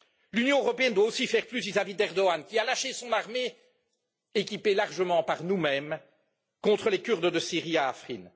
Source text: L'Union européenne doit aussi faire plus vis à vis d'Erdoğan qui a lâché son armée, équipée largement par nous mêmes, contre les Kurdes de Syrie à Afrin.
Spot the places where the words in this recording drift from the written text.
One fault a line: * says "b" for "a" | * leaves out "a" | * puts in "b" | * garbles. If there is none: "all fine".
all fine